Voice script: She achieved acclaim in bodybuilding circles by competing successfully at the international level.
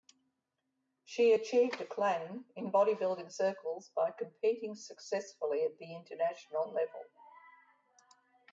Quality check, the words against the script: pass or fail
pass